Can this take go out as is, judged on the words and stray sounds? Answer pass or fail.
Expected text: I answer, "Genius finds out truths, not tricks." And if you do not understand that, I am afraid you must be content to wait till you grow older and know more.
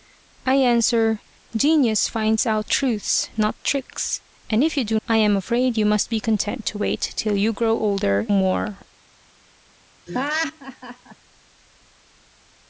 fail